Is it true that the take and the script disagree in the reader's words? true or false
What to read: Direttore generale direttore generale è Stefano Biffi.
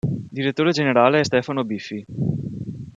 true